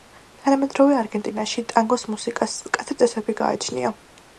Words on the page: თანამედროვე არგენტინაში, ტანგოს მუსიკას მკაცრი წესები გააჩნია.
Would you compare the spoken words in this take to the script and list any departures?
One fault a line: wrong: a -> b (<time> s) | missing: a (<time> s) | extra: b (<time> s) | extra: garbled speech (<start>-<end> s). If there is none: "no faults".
no faults